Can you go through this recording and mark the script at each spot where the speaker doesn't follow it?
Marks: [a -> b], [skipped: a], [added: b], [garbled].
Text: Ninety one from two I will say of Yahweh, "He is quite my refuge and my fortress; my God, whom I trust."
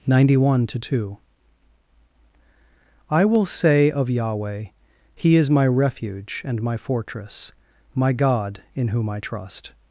Ninety one [from -> to] two I will say of Yahweh, "He is [skipped: quite] my refuge and my fortress; my God, [added: in] whom I trust."